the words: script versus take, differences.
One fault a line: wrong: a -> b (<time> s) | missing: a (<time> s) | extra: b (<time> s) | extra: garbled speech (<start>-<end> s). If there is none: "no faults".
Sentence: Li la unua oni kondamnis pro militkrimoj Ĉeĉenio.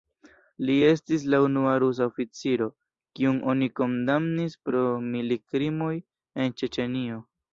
extra: estis (0.9 s)
extra: rusa oficiro kiun (1.8 s)
extra: en (6.5 s)